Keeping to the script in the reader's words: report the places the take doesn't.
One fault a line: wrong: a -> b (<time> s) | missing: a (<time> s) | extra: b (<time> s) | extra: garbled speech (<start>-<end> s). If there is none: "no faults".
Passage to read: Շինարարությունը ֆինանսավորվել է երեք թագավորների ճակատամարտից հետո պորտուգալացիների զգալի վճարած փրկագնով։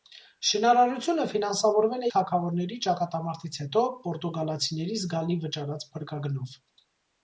missing: երեք (2.1 s)